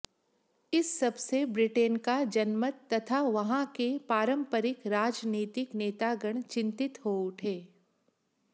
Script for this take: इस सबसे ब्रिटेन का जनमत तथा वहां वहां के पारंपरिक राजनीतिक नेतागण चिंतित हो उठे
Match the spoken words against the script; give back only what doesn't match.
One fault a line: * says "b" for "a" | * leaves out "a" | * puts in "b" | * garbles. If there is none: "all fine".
* leaves out "वहां"